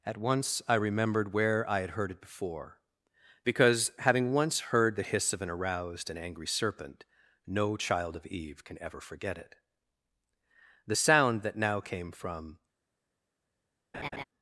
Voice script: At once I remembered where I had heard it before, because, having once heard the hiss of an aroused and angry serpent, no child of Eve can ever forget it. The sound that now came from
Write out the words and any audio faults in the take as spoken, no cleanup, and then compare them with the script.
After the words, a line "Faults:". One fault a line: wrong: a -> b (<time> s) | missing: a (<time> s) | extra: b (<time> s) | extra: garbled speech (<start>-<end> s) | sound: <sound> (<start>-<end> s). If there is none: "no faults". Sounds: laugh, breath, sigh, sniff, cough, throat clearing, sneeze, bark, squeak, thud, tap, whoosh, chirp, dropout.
At once I remembered where I had heard it before, because, having once heard the hiss of an aroused and angry serpent, no child of Eve can ever forget it. The sound that now came from
Faults:
sound: laugh (13.9-14.2 s)